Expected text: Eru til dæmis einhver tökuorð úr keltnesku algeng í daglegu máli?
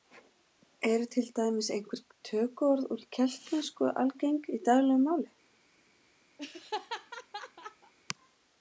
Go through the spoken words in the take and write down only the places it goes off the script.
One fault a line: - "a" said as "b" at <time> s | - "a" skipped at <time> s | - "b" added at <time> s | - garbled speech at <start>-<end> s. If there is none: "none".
none